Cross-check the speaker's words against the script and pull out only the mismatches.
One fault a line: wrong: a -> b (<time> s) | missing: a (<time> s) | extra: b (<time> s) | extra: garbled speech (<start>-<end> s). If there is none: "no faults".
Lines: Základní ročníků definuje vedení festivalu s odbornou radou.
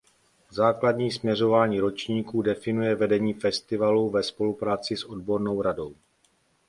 extra: směřování (1.1 s)
extra: ve spolupráci (4.1 s)